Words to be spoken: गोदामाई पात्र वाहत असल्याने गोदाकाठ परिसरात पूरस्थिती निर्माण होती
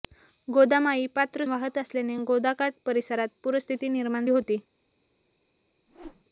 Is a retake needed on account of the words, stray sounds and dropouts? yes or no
yes